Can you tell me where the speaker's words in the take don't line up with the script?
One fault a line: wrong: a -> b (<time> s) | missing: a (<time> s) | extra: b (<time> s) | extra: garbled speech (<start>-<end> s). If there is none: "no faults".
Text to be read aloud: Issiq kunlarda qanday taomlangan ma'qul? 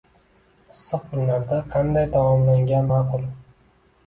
no faults